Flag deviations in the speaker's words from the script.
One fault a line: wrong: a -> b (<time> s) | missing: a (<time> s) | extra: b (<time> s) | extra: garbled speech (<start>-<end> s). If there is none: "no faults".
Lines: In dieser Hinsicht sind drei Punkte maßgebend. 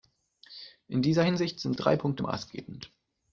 no faults